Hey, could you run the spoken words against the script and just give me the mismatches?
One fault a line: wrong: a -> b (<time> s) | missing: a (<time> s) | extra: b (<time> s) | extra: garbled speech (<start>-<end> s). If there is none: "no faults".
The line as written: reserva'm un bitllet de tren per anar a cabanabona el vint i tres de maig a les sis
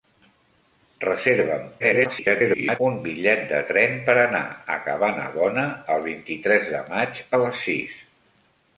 extra: garbled speech (1.8-2.8 s)